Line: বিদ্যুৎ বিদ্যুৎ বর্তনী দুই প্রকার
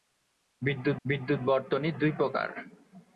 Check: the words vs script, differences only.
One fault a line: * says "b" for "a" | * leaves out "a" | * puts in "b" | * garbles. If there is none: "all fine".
all fine